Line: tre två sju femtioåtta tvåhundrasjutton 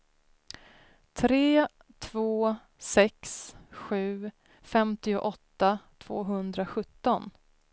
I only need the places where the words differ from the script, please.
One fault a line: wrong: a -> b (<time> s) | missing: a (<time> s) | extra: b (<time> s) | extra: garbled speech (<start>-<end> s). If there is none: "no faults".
extra: sex (2.8 s)